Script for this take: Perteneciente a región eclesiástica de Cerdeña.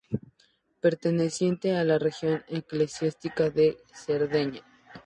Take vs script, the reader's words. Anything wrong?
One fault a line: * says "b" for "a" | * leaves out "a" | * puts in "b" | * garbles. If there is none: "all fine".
* puts in "la"